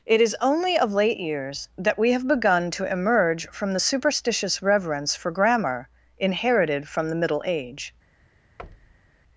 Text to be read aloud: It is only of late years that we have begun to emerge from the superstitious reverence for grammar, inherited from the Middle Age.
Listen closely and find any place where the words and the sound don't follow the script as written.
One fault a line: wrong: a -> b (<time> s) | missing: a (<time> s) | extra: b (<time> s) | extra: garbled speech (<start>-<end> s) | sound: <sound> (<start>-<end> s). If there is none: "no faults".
sound: thud (8.6-9.2 s)